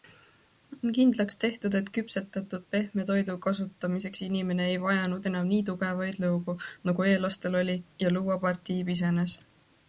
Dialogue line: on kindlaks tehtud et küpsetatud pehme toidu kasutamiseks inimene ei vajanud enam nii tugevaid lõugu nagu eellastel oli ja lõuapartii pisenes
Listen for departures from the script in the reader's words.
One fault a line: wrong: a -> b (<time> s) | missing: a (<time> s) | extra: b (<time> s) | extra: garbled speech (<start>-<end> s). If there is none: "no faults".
no faults